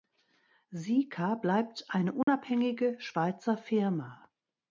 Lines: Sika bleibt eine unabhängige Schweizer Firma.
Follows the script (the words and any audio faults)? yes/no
no